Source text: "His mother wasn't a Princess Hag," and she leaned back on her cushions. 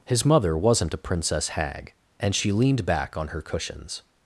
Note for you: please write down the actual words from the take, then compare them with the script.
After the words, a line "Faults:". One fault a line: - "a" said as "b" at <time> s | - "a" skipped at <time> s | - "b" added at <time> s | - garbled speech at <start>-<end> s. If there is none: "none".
"His mother wasn't a Princess Hag," and she leaned back on her cushions.
Faults:
none